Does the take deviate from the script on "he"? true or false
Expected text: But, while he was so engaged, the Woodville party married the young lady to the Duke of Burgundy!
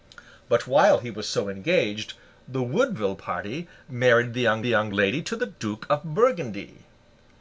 false